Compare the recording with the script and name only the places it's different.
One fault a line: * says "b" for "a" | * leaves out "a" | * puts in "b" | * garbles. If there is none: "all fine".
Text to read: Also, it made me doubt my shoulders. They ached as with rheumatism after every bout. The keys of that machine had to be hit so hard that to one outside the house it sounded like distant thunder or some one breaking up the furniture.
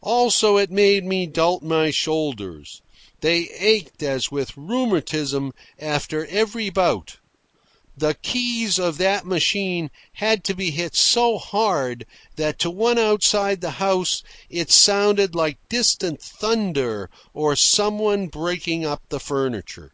all fine